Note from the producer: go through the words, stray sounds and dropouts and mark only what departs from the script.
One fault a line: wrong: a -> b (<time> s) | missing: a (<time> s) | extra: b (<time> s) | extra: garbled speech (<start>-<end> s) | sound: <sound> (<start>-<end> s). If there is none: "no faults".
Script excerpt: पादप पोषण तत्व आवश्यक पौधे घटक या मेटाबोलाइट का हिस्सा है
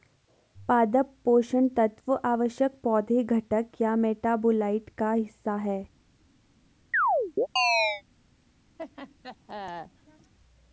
sound: chirp (6.9-8.0 s)
sound: laugh (8.8-10.3 s)